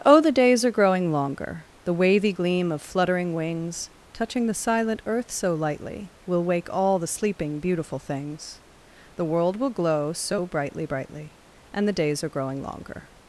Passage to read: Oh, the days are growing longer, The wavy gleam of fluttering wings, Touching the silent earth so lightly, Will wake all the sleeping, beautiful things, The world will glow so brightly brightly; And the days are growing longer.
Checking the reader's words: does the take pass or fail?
pass